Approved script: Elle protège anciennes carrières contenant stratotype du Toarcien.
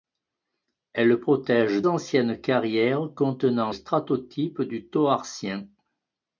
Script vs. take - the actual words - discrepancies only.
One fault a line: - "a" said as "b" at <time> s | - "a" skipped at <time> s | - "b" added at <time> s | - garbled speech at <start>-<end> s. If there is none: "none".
none